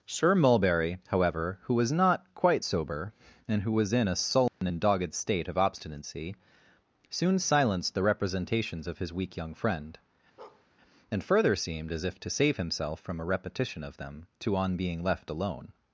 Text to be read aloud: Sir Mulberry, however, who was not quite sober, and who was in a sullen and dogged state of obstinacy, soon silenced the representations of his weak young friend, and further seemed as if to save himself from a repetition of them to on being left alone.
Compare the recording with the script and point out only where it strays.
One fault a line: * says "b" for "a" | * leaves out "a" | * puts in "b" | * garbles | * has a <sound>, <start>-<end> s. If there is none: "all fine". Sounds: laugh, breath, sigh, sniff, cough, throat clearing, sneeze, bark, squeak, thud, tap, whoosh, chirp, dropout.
* has a dropout, 4.5-4.6 s
* has a bark, 10.4-10.7 s